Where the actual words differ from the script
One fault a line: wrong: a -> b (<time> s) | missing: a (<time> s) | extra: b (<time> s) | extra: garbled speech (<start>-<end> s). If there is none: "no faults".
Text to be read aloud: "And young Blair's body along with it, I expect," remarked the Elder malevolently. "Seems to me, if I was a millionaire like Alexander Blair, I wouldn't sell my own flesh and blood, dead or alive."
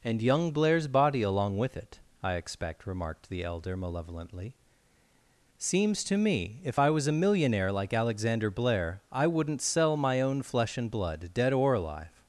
no faults